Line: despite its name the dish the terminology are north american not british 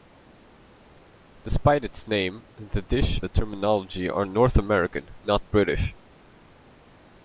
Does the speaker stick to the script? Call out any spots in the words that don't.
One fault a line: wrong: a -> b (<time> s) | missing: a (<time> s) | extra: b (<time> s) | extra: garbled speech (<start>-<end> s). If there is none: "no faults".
no faults